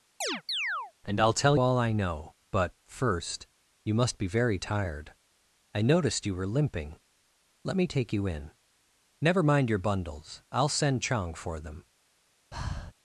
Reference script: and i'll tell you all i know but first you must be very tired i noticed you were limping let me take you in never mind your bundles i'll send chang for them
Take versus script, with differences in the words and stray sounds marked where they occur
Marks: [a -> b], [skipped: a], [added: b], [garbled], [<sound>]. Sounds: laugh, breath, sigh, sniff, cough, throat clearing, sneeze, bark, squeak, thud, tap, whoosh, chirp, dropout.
[chirp] and i'll tell [skipped: you] all i know but first you must be very tired i noticed you were limping let me take you in never mind your bundles i'll send chang for them [breath]